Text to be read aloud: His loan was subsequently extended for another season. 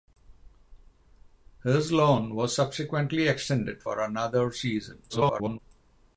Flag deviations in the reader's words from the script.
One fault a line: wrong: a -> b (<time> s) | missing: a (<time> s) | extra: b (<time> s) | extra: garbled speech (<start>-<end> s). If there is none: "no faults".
extra: garbled speech (5.1-5.6 s)